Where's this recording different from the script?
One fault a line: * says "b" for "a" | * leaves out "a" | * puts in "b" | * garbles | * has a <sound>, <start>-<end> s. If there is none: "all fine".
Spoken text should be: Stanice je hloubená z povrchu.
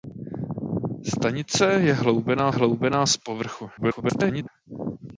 * puts in "hloubená"
* garbles